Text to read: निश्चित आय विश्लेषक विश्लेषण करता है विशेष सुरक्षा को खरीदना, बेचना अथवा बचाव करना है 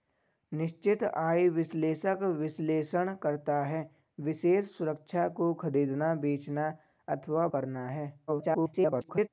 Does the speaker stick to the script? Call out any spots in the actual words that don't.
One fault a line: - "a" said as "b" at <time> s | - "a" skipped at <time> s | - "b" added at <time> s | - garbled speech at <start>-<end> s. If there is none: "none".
- "बचाव" skipped at 7.5 s
- garbled speech at 8.3-9.3 s